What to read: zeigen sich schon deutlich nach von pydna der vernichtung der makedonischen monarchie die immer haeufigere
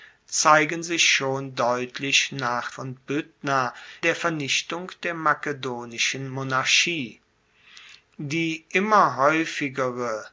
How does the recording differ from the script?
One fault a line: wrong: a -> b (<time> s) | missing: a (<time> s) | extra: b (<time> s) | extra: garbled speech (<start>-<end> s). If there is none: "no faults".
no faults